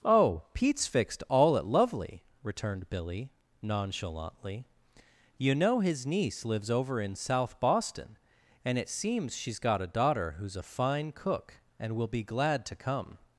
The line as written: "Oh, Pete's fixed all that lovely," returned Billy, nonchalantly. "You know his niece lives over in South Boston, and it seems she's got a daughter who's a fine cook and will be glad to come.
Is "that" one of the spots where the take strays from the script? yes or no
yes